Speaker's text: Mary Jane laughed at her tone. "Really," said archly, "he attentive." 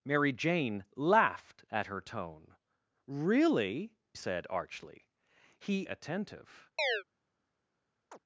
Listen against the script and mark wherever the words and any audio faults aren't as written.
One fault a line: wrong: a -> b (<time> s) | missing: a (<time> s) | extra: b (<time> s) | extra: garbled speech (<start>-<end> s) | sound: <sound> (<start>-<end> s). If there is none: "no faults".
sound: chirp (6.8-7.0 s)
sound: chirp (8.1-8.2 s)